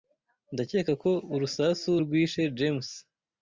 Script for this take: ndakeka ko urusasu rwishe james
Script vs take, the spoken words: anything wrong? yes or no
no